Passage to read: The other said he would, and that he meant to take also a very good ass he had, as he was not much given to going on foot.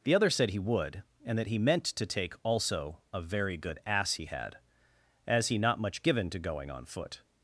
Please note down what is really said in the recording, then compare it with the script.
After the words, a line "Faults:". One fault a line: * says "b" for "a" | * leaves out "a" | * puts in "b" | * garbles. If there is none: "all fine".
The other said he would, and that he meant to take also a very good ass he had, as he not much given to going on foot.
Faults:
* leaves out "was"